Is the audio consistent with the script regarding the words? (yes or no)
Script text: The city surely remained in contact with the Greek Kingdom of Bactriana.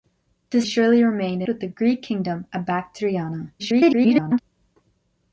no